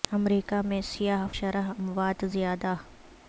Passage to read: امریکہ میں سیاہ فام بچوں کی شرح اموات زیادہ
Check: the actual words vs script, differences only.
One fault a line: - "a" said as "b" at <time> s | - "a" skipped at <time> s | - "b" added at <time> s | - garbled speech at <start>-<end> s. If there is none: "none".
- "فام بچوں کی" skipped at 1.3 s